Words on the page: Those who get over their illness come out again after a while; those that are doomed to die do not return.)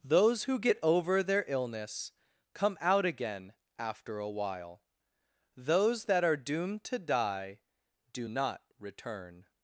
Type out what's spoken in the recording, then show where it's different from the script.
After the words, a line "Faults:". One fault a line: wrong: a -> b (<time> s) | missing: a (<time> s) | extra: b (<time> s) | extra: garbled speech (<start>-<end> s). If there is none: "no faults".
Those who get over their illness come out again after a while; those that are doomed to die do not return.)
Faults:
no faults